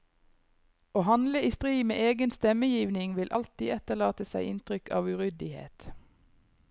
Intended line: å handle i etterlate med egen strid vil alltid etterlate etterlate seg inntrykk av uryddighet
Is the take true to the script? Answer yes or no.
no